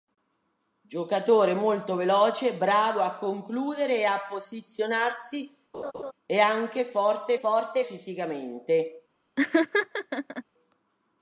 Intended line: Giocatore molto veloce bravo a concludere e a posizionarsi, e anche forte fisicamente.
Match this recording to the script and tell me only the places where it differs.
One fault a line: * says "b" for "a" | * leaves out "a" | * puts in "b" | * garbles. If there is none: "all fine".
* puts in "forte"